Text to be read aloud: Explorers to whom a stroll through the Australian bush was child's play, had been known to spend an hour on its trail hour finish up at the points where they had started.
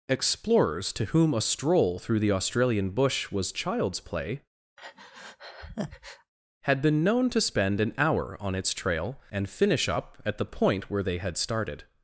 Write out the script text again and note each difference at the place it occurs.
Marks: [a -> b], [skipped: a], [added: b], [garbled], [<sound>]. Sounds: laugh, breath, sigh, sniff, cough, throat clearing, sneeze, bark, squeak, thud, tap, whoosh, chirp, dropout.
Explorers to whom a stroll through the Australian bush was child's play, [breath] had been known to spend an hour on its trail [hour -> and] finish up at the [points -> point] where they had started.